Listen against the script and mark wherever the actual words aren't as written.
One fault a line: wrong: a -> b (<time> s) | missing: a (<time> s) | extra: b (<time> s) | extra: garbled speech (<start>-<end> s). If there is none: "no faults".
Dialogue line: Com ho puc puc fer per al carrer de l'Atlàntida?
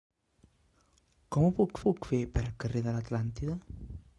no faults